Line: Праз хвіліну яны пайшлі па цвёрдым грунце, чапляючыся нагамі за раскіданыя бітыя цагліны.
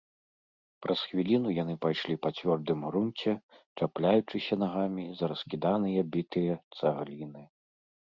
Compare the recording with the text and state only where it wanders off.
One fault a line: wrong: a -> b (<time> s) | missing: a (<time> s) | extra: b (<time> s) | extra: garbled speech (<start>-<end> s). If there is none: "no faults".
no faults